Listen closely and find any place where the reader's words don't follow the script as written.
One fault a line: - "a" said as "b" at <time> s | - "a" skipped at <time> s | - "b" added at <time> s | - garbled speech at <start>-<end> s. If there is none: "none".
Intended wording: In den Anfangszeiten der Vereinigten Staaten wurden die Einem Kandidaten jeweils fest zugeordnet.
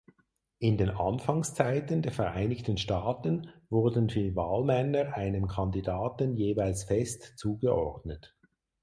- "Wahlmänner" added at 4.3 s